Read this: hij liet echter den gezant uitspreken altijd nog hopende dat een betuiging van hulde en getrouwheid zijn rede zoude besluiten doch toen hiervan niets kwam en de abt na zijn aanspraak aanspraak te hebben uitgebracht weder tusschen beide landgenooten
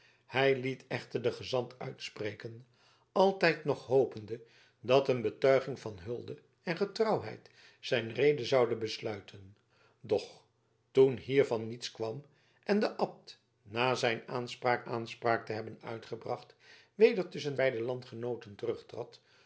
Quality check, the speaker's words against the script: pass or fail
pass